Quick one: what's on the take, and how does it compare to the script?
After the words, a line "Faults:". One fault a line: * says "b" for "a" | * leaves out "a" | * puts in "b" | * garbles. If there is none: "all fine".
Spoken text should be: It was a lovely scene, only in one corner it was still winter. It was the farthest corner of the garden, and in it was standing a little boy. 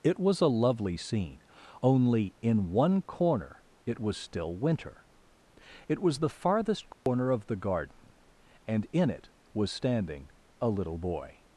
It was a lovely scene, only in one corner it was still winter. It was the farthest corner of the garden, and in it was standing a little boy.
Faults:
all fine